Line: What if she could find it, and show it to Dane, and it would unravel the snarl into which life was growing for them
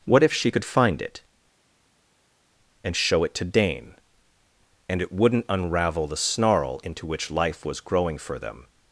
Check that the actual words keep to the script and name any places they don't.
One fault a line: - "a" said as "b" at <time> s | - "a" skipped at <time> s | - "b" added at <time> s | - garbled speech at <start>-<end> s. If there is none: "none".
- "would" said as "wouldn't" at 5.1 s